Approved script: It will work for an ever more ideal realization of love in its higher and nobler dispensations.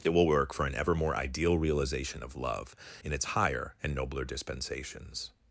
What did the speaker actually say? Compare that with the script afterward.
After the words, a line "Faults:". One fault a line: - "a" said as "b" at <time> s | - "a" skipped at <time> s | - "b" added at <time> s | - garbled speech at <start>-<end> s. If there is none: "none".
It will work for an ever more ideal realization of love in its higher and nobler dispensations.
Faults:
none